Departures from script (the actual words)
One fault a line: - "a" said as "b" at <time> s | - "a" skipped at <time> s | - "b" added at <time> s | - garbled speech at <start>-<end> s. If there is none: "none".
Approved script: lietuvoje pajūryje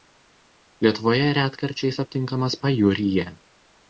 - "retkarčiais aptinkamas" added at 1.4 s